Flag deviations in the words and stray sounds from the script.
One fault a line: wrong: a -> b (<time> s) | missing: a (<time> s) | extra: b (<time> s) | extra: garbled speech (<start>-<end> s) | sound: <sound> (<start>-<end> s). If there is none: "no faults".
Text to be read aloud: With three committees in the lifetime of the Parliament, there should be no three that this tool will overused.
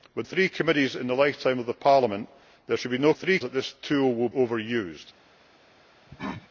sound: cough (6.1-6.5 s)